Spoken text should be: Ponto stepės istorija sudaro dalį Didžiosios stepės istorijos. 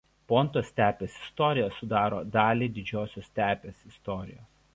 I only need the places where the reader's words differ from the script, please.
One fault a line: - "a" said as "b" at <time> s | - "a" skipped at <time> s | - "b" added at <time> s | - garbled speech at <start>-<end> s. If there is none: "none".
none